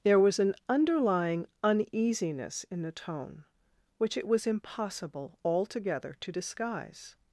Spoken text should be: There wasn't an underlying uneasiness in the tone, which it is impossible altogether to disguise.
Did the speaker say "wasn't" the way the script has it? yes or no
no